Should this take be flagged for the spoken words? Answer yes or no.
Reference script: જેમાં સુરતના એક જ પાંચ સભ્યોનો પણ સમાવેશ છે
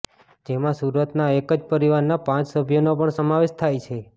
yes